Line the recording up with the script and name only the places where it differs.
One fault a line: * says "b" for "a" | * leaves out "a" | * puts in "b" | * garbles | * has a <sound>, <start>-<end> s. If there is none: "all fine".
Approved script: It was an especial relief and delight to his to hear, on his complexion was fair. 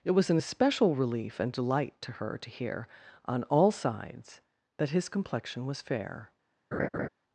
* says "her" for "his"
* puts in "all sides that"
* has a laugh, 6.7-7.1 s